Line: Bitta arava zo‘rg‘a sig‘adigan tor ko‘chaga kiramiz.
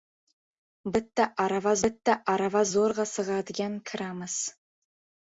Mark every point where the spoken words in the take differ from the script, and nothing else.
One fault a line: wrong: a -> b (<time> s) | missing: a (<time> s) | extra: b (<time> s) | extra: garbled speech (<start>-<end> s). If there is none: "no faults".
extra: bitta arava (1.8 s)
missing: tor ko‘chaga (3.8 s)